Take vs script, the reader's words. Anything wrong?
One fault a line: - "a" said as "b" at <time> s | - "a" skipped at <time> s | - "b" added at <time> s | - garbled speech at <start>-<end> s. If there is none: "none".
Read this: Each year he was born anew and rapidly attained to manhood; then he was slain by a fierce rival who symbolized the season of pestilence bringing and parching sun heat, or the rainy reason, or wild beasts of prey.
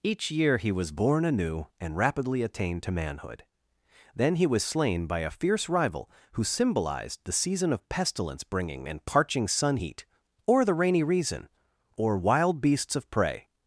none